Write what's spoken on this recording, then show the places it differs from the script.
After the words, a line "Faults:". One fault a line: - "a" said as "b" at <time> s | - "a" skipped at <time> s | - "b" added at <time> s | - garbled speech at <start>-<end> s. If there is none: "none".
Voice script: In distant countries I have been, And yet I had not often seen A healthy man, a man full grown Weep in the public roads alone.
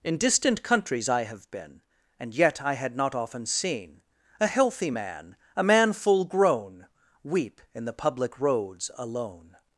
In distant countries I have been, And yet I had not often seen A healthy man, a man full grown Weep in the public roads alone.
Faults:
none